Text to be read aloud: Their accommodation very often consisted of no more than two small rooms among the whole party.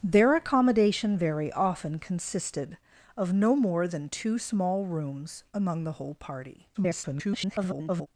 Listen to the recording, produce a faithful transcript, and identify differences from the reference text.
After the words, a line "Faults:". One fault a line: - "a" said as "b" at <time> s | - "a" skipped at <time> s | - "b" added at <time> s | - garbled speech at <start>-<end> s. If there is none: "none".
Their accommodation very often consisted of no more than two small rooms among the whole party. [garbled]
Faults:
- garbled speech at 6.7-8.1 s